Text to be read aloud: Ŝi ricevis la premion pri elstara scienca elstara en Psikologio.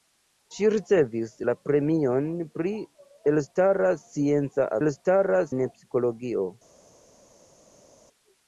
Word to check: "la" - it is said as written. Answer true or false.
true